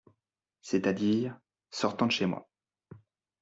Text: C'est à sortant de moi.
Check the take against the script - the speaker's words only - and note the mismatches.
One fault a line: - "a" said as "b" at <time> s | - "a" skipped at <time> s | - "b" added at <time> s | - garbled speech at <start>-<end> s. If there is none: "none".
- "dire" added at 0.9 s
- "chez" added at 2.1 s